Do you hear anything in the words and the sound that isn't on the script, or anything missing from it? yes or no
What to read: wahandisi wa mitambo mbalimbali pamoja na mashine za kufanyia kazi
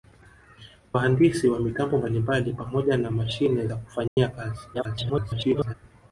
yes